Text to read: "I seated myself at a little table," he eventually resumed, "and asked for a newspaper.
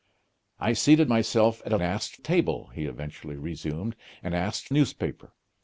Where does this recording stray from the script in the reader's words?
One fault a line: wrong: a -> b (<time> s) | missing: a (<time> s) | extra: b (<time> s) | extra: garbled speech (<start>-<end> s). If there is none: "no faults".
wrong: little -> asked (1.8 s)
missing: for (4.7 s)